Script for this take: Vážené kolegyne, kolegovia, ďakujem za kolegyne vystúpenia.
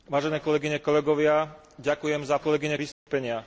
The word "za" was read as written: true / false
true